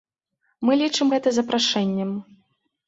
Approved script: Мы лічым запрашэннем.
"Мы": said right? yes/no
yes